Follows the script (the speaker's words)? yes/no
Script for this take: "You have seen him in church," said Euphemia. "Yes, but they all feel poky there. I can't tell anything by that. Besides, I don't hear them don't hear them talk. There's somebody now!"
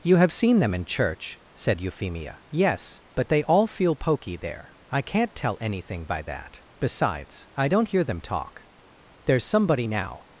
no